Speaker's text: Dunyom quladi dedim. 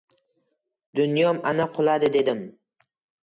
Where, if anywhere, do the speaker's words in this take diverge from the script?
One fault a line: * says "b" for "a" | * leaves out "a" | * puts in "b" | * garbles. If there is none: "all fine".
* puts in "ana"